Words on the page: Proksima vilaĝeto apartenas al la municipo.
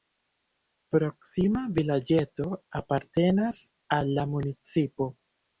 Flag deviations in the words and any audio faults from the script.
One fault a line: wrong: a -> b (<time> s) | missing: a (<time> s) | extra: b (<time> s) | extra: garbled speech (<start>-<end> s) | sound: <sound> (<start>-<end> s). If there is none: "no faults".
no faults